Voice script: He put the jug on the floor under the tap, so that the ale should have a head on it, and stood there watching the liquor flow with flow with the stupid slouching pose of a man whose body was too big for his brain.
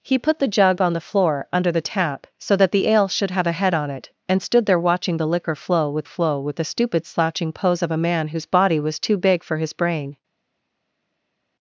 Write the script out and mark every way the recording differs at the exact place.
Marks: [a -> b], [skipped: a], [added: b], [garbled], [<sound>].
He put the jug on the floor under the tap, so that the ale should have a head on it, and stood there watching the liquor flow with flow with the stupid slouching pose of a man whose body was too big for his brain.